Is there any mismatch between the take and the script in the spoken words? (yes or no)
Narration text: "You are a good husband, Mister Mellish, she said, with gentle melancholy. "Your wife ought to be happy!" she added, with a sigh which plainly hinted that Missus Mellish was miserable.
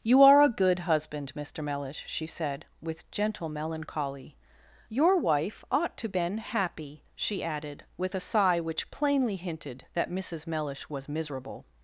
yes